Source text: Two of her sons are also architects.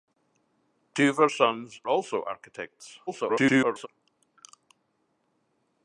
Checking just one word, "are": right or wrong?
wrong